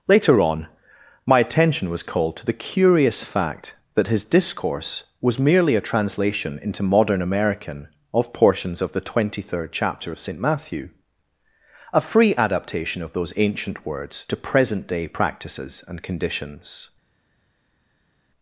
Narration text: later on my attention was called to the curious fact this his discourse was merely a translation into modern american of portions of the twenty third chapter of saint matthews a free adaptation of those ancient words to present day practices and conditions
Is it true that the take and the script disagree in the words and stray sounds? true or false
true